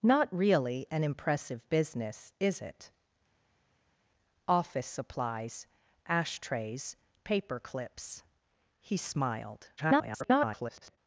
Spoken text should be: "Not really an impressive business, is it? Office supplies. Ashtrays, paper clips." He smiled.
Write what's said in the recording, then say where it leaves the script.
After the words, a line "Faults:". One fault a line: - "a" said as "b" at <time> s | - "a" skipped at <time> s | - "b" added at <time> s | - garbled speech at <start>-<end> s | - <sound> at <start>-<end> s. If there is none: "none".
"Not really an impressive business, is it? Office supplies. Ashtrays, paper clips." He smiled. [garbled]
Faults:
- garbled speech at 9.8-11.0 s